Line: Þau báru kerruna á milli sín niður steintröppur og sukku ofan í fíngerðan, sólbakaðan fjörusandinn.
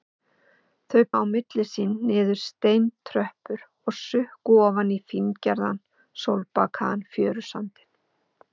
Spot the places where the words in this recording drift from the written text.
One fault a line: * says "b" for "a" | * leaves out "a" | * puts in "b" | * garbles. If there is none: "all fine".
* leaves out "báru kerruna"